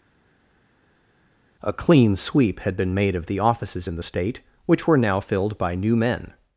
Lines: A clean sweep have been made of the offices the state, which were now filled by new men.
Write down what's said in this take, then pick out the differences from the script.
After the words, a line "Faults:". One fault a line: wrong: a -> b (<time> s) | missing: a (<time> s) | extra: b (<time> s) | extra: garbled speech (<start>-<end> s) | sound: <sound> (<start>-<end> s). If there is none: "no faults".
A clean sweep had been made of the offices in the state, which were now filled by new men.
Faults:
wrong: have -> had (2.6 s)
extra: in (3.9 s)